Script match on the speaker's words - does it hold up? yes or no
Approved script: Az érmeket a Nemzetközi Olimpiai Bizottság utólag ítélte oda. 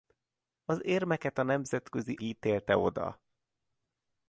no